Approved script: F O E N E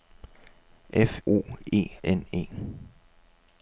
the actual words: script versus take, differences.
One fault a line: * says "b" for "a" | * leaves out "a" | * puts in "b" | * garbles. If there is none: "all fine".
all fine